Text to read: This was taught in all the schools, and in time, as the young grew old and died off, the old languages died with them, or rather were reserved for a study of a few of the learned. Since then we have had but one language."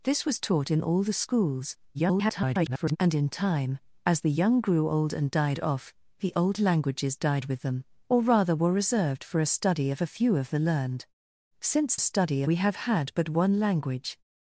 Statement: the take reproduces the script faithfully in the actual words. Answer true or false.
false